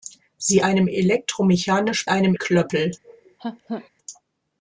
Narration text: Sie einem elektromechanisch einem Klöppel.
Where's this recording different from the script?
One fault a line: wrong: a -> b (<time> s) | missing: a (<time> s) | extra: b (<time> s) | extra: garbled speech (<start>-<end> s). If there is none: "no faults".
no faults